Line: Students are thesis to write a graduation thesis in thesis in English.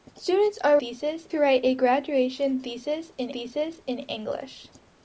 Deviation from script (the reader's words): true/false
false